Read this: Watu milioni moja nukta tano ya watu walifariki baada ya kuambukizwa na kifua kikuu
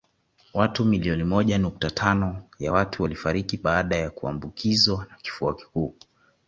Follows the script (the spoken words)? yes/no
yes